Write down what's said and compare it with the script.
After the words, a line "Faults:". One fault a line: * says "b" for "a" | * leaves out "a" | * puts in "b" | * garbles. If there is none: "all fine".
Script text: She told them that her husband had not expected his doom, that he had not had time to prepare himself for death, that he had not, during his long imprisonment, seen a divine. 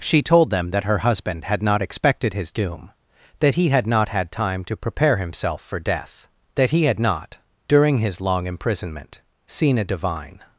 She told them that her husband had not expected his doom, that he had not had time to prepare himself for death, that he had not, during his long imprisonment, seen a divine.
Faults:
all fine